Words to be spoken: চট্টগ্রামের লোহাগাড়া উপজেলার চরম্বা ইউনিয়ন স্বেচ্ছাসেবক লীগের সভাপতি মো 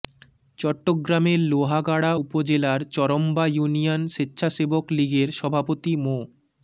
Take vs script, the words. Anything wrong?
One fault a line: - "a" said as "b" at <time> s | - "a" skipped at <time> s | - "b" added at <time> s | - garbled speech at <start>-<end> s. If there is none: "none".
none